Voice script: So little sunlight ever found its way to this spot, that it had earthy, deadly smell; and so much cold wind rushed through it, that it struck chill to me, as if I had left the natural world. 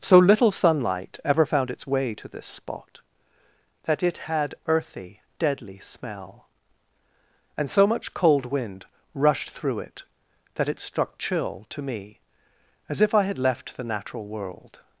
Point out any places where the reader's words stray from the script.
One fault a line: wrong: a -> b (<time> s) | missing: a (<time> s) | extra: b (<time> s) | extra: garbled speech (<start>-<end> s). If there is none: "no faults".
no faults